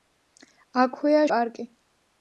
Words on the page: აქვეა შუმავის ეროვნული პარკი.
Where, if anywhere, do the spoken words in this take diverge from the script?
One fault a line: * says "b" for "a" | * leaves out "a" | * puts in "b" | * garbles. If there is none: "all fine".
* leaves out "შუმავის ეროვნული"